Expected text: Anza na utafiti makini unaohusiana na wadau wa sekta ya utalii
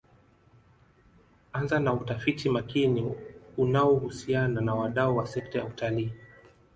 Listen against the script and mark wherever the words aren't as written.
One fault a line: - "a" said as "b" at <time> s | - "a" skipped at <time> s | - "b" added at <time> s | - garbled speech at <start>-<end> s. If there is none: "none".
none